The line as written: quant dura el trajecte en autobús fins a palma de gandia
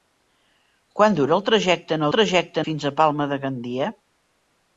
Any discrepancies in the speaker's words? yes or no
yes